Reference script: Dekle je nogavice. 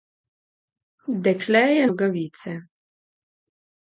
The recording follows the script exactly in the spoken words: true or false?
true